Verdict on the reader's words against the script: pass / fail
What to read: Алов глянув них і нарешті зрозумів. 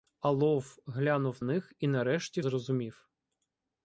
pass